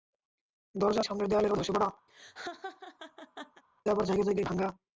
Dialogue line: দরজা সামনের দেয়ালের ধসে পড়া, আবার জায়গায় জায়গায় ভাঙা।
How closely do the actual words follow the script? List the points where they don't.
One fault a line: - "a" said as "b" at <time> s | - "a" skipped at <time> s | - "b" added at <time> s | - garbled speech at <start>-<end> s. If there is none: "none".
none